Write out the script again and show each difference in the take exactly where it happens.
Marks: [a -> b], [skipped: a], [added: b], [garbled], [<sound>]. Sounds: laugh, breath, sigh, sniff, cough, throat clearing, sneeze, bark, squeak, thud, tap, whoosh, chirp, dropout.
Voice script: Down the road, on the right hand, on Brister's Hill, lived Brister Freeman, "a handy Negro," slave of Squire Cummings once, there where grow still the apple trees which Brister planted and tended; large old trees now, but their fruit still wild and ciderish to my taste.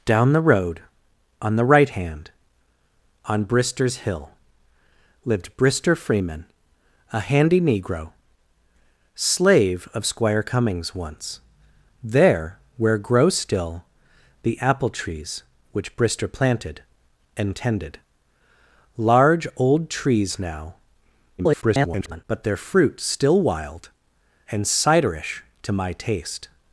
Down the road, on the right hand, on Brister's Hill, lived Brister Freeman, "a handy Negro," slave of Squire Cummings once, there where grow still the apple trees which Brister planted and tended; large old trees now, [garbled] but their fruit still wild and ciderish to my taste.